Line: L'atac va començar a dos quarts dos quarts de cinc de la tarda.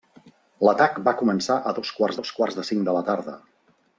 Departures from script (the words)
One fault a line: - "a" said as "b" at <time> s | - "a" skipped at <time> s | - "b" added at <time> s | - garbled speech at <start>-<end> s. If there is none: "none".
none